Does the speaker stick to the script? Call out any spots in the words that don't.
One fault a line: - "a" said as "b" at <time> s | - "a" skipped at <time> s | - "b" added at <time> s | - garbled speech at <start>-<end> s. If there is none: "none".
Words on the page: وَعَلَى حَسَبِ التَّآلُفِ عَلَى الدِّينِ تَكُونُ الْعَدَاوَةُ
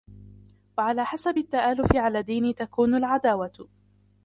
none